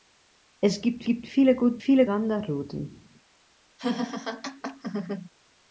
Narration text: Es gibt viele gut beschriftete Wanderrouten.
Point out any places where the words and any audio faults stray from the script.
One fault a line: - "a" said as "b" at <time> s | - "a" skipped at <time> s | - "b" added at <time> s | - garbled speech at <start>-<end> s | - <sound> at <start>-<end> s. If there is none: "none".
- "gibt" added at 1.0 s
- "beschriftete" said as "viele" at 1.8 s
- laugh at 3.8-5.3 s